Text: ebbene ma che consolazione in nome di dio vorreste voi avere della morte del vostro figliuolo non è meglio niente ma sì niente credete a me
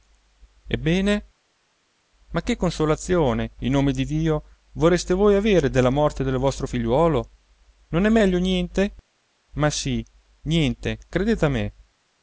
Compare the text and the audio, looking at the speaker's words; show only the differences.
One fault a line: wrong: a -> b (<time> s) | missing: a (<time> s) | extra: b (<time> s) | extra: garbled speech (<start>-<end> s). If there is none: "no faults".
no faults